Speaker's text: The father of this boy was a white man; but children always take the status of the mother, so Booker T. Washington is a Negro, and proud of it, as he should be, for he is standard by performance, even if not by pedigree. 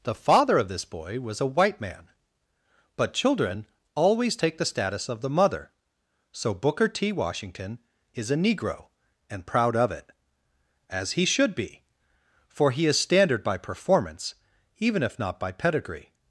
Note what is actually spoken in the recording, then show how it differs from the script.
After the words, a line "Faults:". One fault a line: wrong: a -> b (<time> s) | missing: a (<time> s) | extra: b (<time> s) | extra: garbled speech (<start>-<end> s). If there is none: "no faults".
The father of this boy was a white man; but children always take the status of the mother, so Booker T. Washington is a Negro, and proud of it, as he should be, for he is standard by performance, even if not by pedigree.
Faults:
no faults